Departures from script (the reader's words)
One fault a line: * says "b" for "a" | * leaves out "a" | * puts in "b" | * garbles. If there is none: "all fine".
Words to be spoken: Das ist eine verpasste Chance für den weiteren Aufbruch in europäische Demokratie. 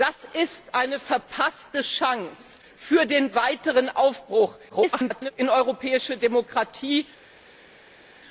* garbles